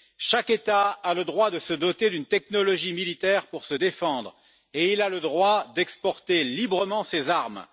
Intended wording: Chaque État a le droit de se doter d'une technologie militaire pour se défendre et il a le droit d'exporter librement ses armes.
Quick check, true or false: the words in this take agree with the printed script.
true